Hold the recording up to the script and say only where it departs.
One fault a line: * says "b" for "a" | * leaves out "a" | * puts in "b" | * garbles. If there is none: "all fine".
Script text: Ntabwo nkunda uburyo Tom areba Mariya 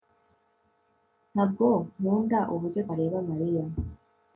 * leaves out "Tom"